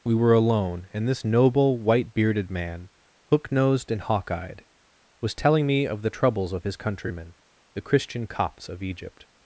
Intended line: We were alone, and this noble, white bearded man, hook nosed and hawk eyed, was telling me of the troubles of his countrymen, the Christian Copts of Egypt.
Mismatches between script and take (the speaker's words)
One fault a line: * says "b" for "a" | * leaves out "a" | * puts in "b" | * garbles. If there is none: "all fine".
all fine